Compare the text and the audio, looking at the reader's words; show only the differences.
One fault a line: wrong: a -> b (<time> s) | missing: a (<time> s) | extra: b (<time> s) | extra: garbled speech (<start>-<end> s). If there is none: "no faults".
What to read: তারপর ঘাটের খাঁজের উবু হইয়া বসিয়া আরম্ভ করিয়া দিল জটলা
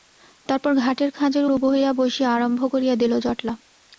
no faults